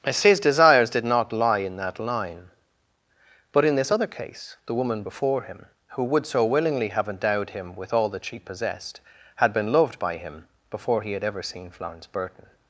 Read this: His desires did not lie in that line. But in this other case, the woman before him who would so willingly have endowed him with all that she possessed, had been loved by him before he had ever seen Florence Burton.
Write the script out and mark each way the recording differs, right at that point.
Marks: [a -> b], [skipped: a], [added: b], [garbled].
His desires did not lie in that line. But in this other case, the woman before him who would so willingly have endowed him with all that she possessed, had been loved by him before he had ever seen Florence Burton.